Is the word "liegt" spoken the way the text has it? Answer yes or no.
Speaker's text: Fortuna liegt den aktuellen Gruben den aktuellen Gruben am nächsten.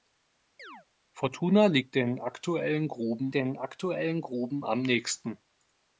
yes